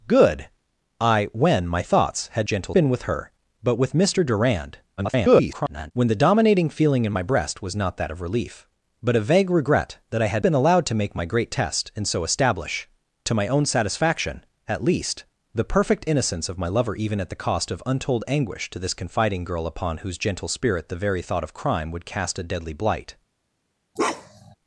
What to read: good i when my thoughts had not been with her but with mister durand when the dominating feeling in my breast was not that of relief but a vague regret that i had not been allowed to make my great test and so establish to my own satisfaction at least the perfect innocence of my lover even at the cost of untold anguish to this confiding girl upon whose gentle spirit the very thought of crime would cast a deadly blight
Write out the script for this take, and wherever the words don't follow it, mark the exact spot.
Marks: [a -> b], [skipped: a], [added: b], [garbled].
good i when my thoughts had [not -> gentle] been with her but with mister durand [garbled] when the dominating feeling in my breast was not that of relief but a vague regret that i had [skipped: not] been allowed to make my great test and so establish to my own satisfaction at least the perfect innocence of my lover even at the cost of untold anguish to this confiding girl upon whose gentle spirit the very thought of crime would cast a deadly blight